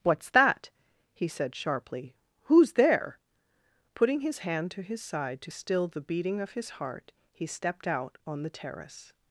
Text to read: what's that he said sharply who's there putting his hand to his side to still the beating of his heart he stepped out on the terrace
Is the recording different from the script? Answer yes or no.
no